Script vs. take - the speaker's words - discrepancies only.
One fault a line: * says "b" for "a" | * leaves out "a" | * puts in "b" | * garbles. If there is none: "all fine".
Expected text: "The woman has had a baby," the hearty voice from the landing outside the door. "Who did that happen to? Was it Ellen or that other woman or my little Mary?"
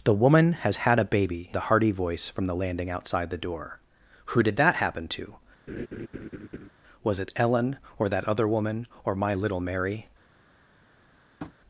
all fine